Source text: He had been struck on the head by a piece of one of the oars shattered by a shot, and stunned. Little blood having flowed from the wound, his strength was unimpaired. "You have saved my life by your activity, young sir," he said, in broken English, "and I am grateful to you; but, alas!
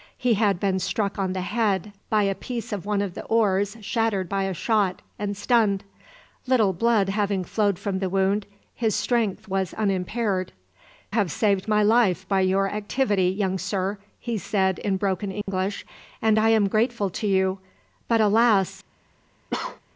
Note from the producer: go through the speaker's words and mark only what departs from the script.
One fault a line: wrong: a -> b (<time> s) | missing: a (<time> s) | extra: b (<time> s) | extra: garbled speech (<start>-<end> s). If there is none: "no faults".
missing: You (10.5 s)